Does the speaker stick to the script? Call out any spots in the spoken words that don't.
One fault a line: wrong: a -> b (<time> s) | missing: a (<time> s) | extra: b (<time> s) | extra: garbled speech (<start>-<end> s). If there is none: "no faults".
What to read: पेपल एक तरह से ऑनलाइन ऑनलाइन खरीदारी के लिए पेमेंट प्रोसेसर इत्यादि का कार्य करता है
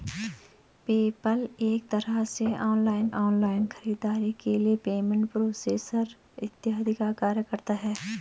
no faults